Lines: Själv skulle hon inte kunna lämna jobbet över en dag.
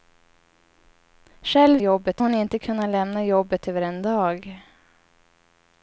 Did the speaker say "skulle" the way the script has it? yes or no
no